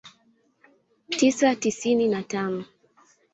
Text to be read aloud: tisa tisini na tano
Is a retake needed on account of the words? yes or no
no